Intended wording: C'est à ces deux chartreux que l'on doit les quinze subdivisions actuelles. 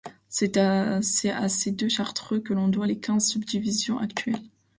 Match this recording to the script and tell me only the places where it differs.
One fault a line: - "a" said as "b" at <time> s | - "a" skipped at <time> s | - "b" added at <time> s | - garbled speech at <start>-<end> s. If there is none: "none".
none